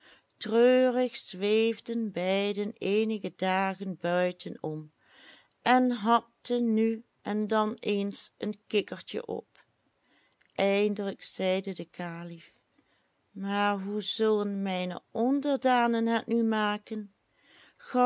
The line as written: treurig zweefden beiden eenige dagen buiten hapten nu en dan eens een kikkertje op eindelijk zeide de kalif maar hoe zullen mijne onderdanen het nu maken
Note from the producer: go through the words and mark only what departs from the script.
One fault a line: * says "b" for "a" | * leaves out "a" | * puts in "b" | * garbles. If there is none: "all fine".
* puts in "om en"